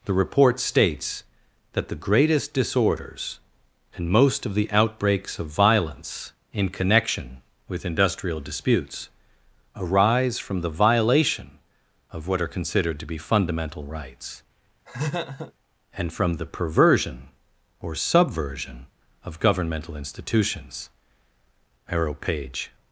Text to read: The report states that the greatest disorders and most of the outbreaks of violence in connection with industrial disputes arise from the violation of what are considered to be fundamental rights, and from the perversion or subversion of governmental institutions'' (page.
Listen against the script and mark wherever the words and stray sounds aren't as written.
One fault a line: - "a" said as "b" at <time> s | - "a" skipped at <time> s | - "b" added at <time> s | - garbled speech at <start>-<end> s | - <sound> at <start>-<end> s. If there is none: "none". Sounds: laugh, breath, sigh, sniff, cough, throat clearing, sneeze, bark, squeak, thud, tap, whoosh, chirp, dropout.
- laugh at 14.9-15.5 s
- "arrow" added at 21.9 s